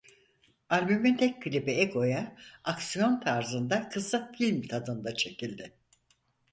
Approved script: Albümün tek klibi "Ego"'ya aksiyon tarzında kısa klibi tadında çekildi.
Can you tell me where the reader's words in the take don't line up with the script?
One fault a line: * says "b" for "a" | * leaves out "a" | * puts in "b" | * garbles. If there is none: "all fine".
* says "film" for "klibi"